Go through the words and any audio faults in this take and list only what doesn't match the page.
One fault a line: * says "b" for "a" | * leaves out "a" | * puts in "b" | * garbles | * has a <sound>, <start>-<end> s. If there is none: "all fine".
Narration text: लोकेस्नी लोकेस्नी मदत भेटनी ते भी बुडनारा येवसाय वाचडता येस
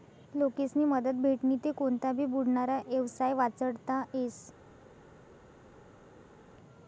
* leaves out "लोकेस्नी"
* puts in "कोनता"